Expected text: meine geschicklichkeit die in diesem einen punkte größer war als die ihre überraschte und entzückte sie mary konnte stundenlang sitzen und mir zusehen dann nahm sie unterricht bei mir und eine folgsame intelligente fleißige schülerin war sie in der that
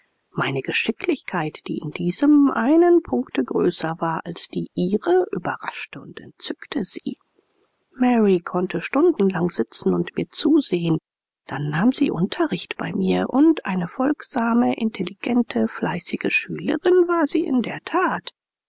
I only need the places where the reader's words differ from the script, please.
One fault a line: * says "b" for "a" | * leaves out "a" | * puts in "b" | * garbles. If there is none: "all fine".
all fine